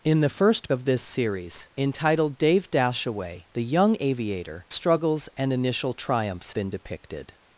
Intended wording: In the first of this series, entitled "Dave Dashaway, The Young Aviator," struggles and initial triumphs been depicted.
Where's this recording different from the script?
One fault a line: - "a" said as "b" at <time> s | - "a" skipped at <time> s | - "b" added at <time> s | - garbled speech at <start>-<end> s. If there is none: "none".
none